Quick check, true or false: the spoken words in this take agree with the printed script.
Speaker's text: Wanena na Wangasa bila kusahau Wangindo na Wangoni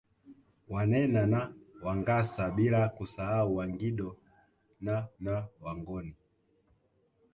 false